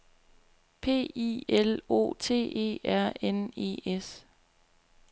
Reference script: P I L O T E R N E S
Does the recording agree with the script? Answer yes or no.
yes